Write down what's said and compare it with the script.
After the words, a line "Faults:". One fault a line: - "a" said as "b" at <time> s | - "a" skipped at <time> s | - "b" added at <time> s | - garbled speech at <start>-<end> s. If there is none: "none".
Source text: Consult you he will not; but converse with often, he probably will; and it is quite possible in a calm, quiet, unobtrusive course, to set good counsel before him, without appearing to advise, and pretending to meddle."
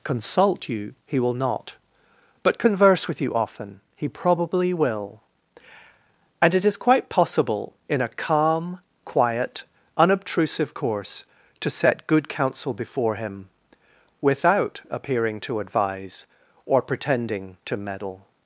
Consult you he will not; but converse with you often, he probably will; and it is quite possible in a calm, quiet, unobtrusive course, to set good counsel before him, without appearing to advise, or pretending to meddle."
Faults:
- "you" added at 3.2 s
- "and" said as "or" at 16.6 s